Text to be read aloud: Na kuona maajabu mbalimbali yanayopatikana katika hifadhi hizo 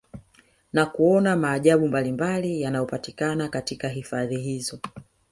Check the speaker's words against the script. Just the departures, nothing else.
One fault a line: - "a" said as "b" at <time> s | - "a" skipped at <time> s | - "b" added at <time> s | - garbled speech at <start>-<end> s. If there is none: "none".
none